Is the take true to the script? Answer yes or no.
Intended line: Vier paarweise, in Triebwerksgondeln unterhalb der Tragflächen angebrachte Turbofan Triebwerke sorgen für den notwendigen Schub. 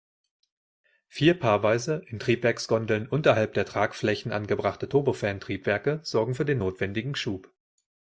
yes